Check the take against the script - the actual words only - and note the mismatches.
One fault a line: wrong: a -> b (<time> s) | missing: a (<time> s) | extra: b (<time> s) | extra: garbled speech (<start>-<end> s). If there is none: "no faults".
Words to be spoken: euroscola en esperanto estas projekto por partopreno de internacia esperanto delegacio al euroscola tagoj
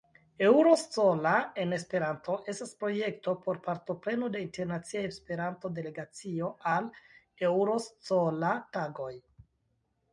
no faults